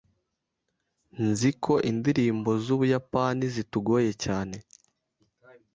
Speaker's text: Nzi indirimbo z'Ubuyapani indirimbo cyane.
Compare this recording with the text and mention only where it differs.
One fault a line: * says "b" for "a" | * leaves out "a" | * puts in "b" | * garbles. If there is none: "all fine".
* puts in "ko"
* says "zitugoye" for "indirimbo"